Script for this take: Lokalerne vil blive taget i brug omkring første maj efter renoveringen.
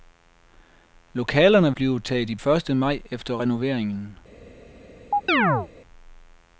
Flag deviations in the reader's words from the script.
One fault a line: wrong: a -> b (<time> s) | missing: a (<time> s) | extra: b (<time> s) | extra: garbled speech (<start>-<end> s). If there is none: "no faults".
missing: vil (1.7 s)
missing: brug omkring (2.4 s)